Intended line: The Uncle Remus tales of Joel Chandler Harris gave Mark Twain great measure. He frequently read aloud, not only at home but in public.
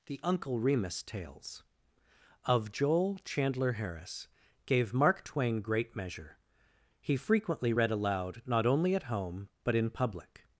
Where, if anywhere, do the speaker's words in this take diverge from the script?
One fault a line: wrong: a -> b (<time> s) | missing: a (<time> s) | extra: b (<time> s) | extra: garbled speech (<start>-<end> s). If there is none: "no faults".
no faults